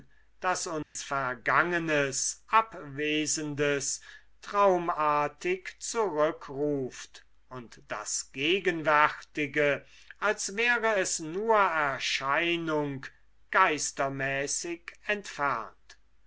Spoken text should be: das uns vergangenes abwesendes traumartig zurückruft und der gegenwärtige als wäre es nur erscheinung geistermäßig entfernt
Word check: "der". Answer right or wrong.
wrong